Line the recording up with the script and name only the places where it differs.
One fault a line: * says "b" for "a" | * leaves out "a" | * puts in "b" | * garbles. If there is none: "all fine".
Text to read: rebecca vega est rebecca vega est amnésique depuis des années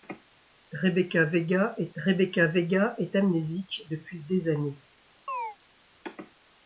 all fine